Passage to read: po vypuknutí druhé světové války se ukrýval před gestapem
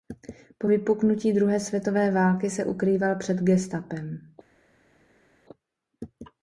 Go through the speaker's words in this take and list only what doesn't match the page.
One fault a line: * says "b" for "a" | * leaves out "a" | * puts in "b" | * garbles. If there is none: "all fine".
all fine